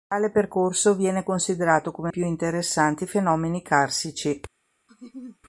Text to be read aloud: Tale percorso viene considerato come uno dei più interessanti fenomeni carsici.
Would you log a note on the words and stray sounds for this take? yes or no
yes